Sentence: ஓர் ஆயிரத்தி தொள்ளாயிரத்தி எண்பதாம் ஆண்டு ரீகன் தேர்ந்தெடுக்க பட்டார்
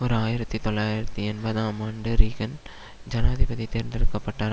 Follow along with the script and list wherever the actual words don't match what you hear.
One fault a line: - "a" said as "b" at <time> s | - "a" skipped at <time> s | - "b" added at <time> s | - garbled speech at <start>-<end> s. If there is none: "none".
- "ஜனாதிபதி" added at 3.1 s